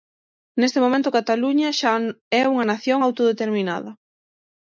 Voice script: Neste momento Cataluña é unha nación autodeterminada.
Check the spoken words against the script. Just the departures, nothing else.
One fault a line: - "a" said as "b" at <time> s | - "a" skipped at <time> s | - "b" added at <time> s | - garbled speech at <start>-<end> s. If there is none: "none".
- "xa" added at 1.8 s